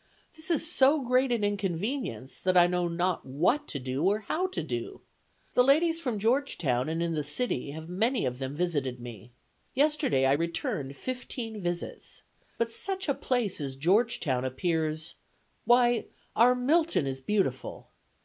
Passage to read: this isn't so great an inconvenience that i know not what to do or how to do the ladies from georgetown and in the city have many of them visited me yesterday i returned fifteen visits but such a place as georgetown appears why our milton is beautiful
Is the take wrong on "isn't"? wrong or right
wrong